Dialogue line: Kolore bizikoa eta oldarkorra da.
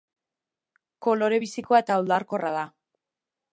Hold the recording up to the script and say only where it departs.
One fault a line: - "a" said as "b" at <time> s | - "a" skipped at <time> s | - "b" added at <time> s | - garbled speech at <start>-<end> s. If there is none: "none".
none